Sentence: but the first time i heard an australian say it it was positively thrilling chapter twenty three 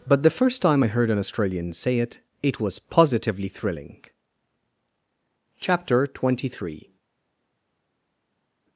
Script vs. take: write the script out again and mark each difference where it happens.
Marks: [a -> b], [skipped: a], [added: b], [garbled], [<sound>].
but the first time i heard an australian say it it was positively thrilling chapter twenty three